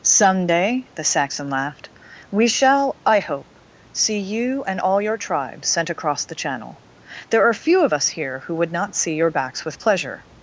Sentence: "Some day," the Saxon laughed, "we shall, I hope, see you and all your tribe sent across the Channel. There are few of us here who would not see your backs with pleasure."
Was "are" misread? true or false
false